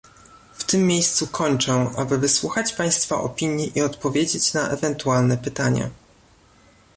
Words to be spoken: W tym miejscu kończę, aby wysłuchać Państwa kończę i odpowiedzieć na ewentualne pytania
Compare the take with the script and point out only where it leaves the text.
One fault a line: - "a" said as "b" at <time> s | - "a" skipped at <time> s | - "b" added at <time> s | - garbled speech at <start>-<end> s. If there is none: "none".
- "kończę" said as "opinii" at 3.1 s